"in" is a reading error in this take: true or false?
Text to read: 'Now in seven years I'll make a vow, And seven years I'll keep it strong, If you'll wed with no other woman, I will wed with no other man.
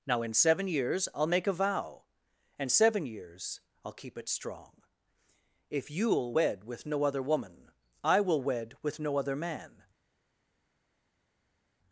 false